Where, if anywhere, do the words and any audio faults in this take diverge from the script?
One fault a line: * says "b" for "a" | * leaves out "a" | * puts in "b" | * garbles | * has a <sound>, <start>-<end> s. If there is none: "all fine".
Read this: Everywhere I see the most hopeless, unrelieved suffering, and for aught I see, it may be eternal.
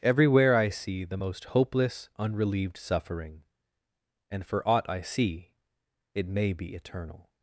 all fine